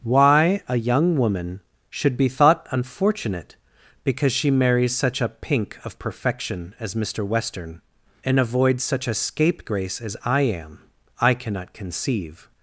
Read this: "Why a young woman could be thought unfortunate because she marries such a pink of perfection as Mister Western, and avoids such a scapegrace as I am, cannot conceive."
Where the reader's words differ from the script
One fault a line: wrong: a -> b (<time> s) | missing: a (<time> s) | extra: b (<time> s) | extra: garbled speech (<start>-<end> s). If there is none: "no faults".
wrong: could -> should (1.9 s)
extra: I (11.2 s)